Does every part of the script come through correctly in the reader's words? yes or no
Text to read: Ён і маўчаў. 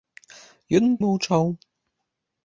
yes